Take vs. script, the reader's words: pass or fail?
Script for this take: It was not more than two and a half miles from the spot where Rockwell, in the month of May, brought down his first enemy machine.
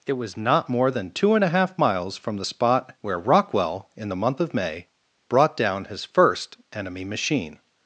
pass